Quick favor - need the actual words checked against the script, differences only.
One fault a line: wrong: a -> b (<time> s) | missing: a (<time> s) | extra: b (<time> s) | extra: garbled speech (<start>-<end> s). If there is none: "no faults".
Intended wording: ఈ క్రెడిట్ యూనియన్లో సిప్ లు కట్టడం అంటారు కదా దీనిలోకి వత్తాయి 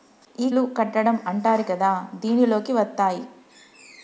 missing: క్రెడిట్ యూనియన్లో సిప్ (0.5 s)